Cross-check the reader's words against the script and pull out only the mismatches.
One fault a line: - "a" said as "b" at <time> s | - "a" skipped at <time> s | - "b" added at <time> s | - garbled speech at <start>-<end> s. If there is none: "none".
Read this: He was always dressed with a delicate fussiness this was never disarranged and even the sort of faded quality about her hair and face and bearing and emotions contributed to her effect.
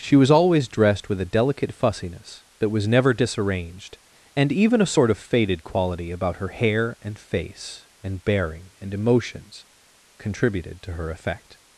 - "He" said as "She" at 0.0 s
- "this" said as "that" at 2.6 s
- "the" said as "a" at 4.8 s